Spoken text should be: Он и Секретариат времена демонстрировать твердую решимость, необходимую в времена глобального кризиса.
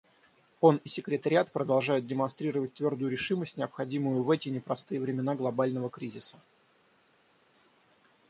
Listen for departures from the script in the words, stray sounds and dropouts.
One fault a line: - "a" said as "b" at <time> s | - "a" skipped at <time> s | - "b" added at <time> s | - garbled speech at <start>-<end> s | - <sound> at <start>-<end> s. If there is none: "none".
- "времена" said as "продолжают" at 1.5 s
- "эти непростые" added at 4.3 s